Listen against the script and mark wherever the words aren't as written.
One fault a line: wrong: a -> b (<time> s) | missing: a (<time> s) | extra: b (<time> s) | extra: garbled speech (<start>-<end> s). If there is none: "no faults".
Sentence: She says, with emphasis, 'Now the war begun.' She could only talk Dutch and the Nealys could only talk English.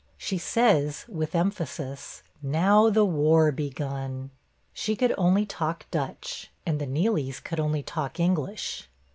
no faults